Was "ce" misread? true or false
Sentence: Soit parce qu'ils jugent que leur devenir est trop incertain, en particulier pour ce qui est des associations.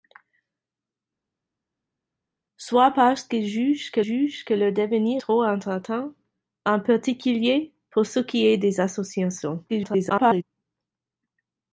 false